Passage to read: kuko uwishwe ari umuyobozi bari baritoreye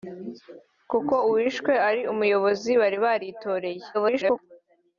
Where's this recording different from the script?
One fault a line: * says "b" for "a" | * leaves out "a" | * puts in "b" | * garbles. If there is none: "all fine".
* garbles